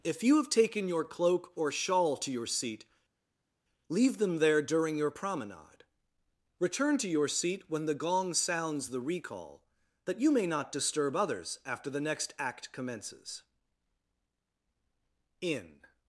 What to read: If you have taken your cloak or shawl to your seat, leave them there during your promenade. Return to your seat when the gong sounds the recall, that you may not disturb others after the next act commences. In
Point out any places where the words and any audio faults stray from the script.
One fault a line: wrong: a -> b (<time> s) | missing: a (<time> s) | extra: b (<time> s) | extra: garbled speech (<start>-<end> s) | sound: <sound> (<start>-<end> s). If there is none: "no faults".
no faults